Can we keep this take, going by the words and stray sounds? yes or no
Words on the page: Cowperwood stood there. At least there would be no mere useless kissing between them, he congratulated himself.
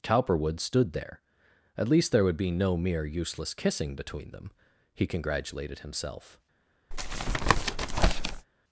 no